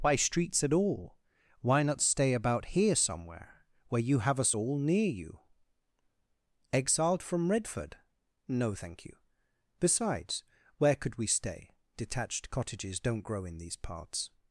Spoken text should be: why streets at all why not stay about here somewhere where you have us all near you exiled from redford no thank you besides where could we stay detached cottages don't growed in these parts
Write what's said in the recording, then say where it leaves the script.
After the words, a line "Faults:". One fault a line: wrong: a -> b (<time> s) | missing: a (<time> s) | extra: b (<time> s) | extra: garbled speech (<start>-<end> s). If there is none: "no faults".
why streets at all why not stay about here somewhere where you have us all near you exiled from redford no thank you besides where could we stay detached cottages don't grow in these parts
Faults:
wrong: growed -> grow (13.2 s)